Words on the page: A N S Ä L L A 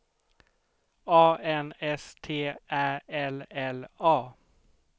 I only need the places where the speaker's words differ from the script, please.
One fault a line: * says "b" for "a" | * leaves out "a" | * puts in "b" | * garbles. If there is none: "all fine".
* puts in "T"